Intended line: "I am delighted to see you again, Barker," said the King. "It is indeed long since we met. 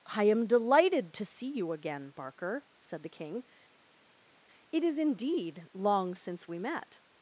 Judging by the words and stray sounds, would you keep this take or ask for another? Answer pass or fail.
pass